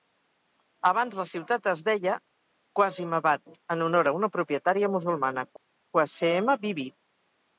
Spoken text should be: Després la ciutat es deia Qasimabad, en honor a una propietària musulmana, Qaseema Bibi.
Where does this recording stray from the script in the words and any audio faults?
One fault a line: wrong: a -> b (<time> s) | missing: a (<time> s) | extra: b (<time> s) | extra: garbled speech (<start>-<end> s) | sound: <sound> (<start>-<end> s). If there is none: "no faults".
wrong: Després -> Abans (0.9 s)